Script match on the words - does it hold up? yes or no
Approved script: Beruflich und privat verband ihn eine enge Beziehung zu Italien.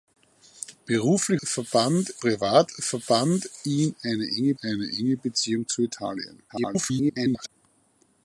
no